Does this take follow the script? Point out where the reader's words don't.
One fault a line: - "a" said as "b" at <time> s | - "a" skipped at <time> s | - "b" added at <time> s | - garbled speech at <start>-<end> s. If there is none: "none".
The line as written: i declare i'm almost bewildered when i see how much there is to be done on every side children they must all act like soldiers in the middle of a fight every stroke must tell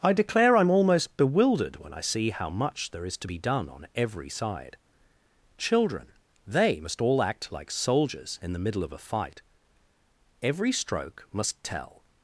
none